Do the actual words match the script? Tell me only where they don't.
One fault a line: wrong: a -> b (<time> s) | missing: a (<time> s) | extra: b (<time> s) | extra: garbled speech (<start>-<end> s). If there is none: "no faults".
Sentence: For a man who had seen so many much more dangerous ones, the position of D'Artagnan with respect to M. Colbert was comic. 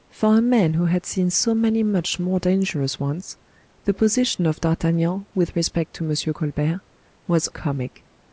no faults